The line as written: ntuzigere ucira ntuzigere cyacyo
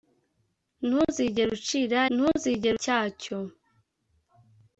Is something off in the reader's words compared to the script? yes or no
no